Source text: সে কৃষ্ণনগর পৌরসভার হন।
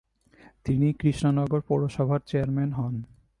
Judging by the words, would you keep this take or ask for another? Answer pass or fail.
fail